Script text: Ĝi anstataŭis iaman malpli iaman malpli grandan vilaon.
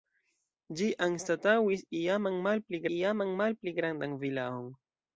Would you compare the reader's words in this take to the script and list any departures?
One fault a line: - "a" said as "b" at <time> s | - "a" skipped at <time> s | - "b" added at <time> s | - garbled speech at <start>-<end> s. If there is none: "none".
none